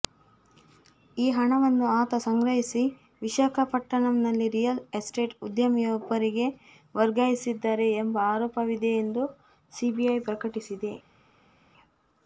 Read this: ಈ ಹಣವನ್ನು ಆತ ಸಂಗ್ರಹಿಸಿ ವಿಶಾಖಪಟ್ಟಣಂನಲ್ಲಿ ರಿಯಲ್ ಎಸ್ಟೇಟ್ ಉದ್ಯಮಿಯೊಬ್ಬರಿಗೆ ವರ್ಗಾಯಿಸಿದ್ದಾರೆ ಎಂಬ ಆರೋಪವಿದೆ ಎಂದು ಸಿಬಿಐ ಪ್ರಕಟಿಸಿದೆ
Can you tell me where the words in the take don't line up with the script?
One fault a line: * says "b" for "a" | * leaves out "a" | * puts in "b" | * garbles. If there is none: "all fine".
all fine